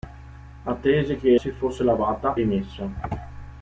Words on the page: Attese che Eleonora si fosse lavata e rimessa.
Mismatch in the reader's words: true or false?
true